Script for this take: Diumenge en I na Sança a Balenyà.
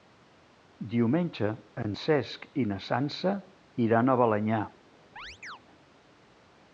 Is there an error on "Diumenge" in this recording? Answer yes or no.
no